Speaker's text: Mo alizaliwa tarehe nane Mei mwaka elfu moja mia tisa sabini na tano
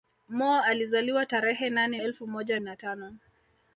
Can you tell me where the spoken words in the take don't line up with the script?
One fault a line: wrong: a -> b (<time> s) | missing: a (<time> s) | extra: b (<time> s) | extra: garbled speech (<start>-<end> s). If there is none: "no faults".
missing: Mei mwaka (2.0 s)
missing: mia tisa sabini (2.6 s)